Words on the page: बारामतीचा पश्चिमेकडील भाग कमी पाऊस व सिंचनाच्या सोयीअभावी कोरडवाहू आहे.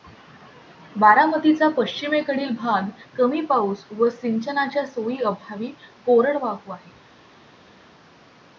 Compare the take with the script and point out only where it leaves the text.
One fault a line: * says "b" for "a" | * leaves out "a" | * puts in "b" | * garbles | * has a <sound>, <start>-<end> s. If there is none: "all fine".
all fine